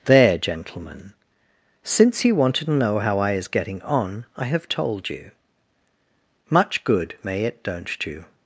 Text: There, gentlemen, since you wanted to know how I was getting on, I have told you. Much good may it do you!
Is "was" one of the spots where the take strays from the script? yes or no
yes